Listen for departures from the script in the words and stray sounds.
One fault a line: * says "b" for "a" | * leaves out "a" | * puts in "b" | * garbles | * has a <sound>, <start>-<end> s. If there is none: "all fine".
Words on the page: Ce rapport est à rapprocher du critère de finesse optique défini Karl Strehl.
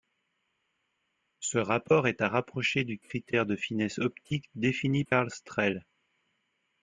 all fine